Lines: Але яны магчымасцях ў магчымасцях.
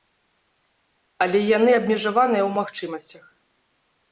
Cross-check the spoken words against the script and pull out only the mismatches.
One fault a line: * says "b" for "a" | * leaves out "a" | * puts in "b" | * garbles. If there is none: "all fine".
* says "абмежаваныя" for "магчымасцях"